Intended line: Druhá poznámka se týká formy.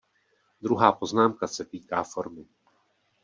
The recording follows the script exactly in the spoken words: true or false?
true